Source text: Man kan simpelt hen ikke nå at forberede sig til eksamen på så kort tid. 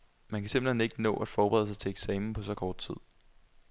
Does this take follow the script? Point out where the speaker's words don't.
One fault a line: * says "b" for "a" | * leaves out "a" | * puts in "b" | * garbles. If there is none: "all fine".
all fine